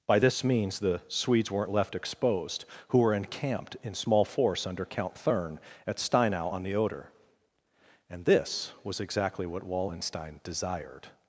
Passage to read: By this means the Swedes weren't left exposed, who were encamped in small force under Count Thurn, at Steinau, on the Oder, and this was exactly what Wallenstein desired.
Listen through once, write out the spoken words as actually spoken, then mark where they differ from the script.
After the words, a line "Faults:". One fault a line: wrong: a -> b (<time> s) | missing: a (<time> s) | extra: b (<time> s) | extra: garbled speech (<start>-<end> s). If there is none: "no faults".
By this means the Swedes weren't left exposed, who were encamped in small force under Count Thurn, at Steinau, on the Oder, and this was exactly what Wallenstein desired.
Faults:
no faults